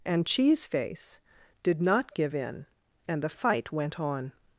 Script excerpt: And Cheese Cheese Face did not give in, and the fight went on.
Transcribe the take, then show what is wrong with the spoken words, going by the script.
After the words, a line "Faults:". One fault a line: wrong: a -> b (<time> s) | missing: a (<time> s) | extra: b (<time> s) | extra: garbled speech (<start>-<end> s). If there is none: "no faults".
And Cheese Face did not give in, and the fight went on.
Faults:
missing: Cheese (0.7 s)